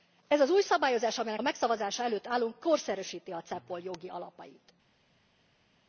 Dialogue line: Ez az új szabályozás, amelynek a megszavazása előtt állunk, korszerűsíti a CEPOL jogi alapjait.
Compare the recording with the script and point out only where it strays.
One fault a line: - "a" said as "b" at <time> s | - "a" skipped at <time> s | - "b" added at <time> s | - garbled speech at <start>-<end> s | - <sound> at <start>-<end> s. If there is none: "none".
none